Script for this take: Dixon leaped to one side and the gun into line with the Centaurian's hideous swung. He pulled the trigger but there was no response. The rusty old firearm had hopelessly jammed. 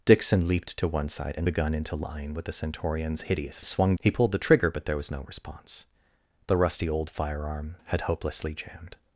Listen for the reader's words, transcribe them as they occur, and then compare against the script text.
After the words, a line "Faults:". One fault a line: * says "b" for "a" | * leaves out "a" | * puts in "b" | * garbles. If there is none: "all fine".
Dixon leaped to one side and the gun into line with the Centaurian's hideous swung. He pulled the trigger but there was no response. The rusty old firearm had hopelessly jammed.
Faults:
all fine